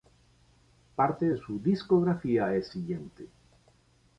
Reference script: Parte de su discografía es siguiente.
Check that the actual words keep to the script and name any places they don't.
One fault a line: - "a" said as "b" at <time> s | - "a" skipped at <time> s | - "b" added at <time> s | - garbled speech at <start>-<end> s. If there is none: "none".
none